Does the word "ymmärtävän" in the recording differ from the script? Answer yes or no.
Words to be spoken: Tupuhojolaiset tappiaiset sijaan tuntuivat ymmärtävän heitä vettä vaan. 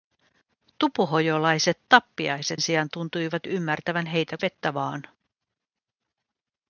no